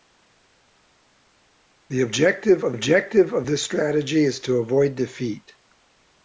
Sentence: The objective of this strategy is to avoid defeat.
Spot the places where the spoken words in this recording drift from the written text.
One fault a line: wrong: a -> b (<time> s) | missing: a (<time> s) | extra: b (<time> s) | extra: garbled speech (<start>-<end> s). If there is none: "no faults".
extra: objective of (2.7 s)